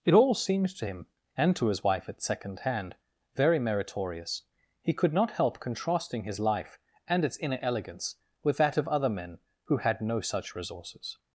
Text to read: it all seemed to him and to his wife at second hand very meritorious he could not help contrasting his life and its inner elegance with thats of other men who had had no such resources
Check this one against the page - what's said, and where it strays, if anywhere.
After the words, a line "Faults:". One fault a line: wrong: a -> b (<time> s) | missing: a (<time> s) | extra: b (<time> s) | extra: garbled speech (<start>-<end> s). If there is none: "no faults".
it all seemed to him and to his wife at second hand very meritorious he could not help contrasting his life and its inner elegance with that of other men who had no such resources
Faults:
wrong: thats -> that (8.6 s)
missing: had (10.0 s)